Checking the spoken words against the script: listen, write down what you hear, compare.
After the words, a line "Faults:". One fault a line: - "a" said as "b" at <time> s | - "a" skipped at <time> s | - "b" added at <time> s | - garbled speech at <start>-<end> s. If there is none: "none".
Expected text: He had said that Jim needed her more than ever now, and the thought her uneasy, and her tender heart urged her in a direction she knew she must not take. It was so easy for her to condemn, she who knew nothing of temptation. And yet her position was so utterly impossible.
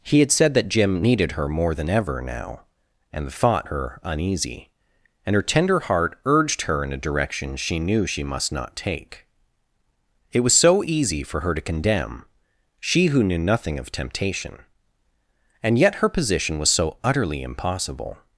He had said that Jim needed her more than ever now, and the thought her uneasy, and her tender heart urged her in a direction she knew she must not take. It was so easy for her to condemn, she who knew nothing of temptation. And yet her position was so utterly impossible.
Faults:
none